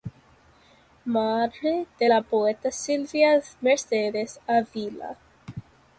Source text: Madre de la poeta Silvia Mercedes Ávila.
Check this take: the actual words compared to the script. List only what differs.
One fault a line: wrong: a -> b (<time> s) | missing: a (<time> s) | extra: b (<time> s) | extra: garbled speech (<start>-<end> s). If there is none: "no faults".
no faults